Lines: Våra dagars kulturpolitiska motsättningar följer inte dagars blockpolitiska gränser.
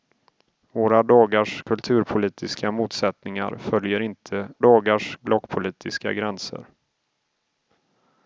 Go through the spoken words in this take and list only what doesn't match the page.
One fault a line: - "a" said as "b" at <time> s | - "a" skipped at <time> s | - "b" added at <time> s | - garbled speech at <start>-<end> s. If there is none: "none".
none